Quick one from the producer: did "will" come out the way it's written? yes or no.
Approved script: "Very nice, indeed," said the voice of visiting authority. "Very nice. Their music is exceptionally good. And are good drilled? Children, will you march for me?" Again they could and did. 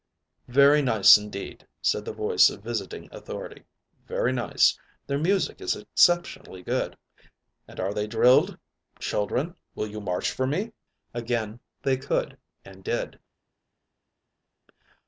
yes